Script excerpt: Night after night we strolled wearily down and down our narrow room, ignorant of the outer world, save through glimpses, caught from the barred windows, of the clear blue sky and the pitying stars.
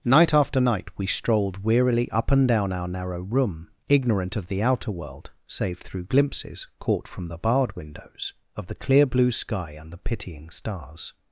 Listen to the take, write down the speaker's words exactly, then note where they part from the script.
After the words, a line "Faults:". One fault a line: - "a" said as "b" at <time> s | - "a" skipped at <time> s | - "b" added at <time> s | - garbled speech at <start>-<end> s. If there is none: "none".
Night after night we strolled wearily up and down our narrow room, ignorant of the outer world, save through glimpses, caught from the barred windows, of the clear blue sky and the pitying stars.
Faults:
- "down" said as "up" at 2.1 s